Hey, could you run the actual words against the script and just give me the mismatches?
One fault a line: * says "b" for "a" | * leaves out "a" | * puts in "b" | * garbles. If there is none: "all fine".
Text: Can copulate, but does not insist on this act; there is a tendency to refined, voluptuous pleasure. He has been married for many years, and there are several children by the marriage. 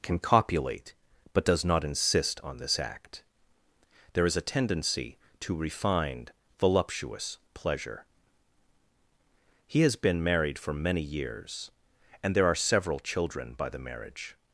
all fine